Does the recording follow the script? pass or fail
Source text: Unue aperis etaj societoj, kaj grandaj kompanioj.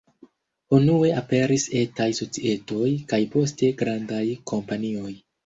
fail